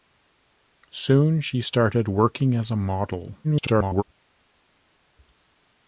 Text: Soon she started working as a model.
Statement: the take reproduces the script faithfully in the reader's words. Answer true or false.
false